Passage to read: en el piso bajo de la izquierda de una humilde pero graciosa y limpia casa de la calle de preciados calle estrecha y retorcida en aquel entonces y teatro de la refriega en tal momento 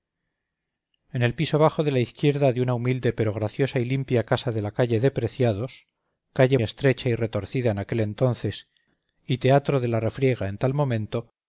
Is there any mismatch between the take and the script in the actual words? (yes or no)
no